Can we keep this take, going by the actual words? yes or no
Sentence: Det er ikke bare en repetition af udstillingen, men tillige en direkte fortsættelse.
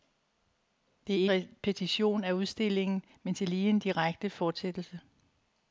no